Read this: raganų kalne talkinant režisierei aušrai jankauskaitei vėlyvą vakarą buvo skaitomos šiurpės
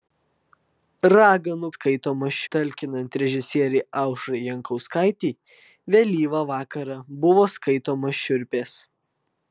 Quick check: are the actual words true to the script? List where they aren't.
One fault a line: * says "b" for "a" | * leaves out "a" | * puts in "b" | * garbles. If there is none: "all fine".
* says "skaitomos" for "kalne"